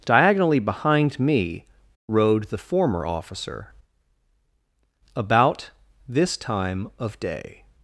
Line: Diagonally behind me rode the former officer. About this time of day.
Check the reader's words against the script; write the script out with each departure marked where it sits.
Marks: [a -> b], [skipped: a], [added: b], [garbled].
Diagonally behind me rode the former officer. About this time of day.